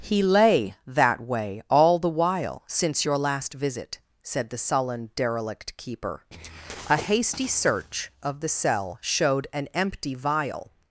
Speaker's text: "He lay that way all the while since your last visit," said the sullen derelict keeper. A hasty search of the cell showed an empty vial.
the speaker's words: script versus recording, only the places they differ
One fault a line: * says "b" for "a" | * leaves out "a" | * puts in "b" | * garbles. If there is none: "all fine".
all fine